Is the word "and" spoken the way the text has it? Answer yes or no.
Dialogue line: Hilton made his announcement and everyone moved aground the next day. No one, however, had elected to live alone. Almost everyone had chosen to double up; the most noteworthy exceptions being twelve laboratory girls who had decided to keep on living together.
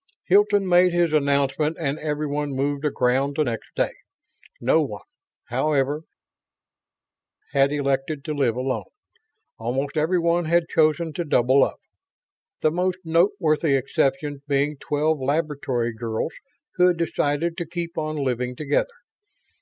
yes